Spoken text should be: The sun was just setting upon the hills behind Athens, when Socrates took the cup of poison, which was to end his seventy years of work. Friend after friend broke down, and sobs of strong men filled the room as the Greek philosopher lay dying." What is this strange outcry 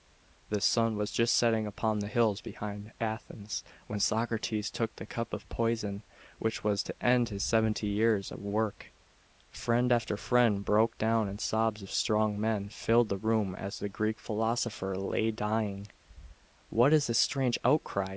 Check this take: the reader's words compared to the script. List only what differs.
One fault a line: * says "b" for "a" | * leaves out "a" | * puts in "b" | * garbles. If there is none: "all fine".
all fine